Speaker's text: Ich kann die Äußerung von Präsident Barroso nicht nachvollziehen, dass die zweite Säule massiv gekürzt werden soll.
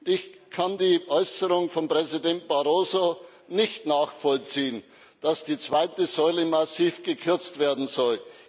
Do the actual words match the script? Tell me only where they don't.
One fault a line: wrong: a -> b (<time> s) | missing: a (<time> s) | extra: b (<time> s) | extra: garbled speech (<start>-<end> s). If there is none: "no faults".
no faults